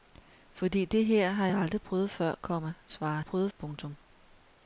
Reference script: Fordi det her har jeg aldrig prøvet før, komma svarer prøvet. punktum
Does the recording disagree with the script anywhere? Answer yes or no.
no